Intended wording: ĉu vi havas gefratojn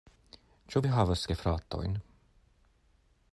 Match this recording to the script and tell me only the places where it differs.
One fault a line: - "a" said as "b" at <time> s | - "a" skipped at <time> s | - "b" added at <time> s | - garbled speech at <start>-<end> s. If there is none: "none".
none